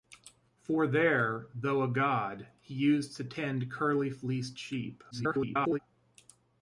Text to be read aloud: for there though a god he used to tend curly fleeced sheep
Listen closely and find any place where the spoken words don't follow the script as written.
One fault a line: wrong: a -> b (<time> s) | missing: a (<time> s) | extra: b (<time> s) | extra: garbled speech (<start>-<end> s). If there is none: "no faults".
extra: garbled speech (5.1-5.8 s)